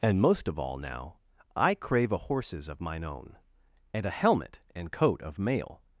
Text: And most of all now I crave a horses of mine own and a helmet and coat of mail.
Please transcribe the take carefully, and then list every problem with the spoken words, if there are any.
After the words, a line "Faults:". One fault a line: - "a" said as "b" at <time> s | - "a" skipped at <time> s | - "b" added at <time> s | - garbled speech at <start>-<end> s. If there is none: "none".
And most of all now I crave a horses of mine own and a helmet and coat of mail.
Faults:
none